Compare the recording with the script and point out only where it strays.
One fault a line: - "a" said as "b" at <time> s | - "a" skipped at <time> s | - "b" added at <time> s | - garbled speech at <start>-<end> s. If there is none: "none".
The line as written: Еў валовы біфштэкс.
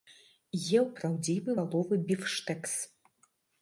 - "праўдзівы" added at 1.0 s